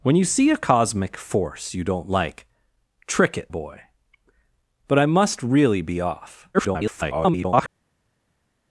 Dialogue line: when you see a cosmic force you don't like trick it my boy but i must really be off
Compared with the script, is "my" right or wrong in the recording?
wrong